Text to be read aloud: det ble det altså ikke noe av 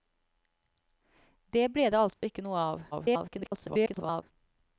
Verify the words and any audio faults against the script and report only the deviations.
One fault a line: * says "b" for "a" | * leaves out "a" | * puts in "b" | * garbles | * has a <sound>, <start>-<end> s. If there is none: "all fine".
* has a dropout, 2.1-2.2 s
* garbles